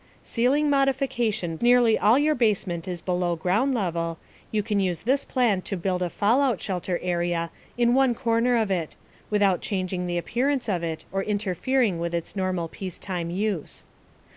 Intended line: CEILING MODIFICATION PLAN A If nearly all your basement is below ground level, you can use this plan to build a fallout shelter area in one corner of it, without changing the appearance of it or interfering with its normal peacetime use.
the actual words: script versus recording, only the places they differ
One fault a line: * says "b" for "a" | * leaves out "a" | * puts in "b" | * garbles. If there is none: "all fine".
* leaves out "PLAN A If"